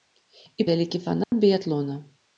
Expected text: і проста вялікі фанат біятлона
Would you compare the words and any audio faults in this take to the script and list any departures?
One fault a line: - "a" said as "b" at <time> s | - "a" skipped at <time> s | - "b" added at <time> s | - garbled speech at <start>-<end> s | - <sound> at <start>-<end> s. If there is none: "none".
- "проста" skipped at 0.7 s
- dropout at 1.2-1.3 s